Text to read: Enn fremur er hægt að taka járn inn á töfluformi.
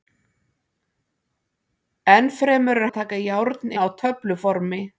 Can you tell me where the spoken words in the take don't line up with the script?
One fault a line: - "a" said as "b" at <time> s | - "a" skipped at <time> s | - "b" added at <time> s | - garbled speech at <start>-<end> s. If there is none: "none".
- "hægt" skipped at 2.9 s
- "inn" skipped at 3.7 s